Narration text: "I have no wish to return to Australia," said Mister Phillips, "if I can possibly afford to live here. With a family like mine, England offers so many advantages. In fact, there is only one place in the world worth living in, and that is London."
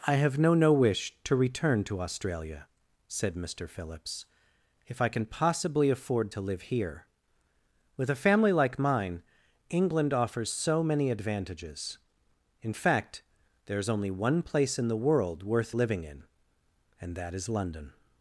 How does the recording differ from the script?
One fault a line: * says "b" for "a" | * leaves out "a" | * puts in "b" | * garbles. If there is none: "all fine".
* puts in "no"